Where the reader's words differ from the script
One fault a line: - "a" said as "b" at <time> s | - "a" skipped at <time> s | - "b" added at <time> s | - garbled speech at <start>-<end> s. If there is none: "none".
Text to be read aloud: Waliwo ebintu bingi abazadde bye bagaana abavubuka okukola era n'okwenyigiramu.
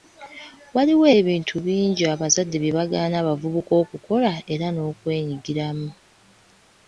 none